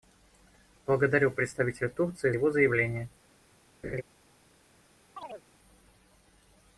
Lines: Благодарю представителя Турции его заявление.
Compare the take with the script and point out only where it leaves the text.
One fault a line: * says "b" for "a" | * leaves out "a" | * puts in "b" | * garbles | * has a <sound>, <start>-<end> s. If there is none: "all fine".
* has a laugh, 3.8-4.0 s
* has a chirp, 5.2-5.5 s